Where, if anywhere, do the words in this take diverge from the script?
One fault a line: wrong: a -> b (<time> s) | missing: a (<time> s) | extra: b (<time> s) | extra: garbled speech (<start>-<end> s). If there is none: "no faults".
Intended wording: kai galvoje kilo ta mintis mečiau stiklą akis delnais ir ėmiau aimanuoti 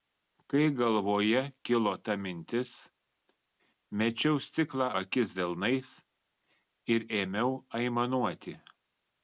no faults